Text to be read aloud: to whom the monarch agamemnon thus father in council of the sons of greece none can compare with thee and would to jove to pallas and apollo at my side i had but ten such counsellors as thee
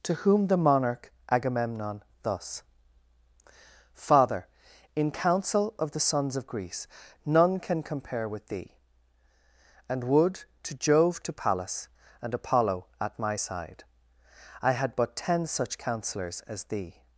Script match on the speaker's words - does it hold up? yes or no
yes